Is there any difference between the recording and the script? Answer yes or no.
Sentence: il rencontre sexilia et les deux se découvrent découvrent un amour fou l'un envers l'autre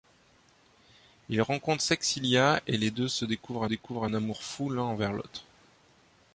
no